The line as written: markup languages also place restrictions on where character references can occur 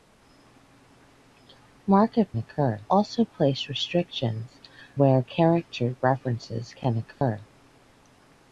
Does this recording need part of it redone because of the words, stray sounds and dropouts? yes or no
yes